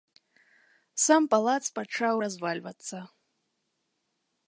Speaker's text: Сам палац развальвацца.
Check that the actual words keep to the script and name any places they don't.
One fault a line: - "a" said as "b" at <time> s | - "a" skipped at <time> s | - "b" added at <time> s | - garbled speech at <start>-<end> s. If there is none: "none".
- "пачаў" added at 1.8 s